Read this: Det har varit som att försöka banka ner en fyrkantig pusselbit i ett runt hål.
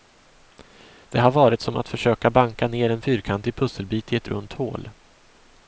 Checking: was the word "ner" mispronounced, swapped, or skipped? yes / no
no